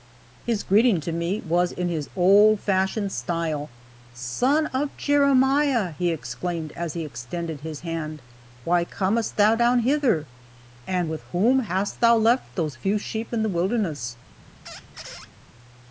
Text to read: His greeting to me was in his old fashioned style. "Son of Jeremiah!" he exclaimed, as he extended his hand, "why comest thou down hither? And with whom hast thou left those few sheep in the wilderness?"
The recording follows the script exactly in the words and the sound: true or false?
false